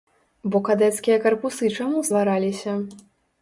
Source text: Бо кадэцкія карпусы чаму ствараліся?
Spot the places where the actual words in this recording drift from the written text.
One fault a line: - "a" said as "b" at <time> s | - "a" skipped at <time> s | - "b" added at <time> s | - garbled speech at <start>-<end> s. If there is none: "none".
none